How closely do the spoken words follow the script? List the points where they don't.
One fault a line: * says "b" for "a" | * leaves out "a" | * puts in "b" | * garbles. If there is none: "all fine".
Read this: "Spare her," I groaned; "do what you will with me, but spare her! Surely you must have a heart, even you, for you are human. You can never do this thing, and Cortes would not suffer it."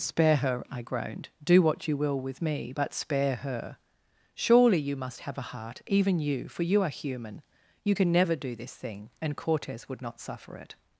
all fine